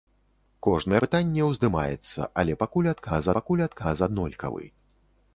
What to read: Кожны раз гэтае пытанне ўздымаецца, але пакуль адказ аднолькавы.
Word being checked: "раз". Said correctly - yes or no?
no